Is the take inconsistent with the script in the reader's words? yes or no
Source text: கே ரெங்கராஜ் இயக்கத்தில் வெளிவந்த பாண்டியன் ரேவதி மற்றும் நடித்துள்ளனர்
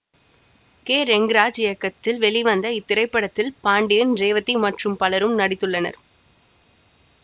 yes